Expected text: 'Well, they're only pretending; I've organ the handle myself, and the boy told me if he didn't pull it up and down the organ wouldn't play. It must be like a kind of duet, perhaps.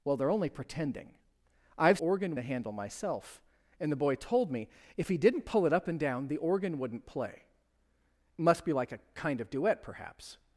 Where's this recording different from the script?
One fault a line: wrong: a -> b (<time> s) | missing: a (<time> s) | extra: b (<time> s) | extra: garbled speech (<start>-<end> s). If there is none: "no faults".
no faults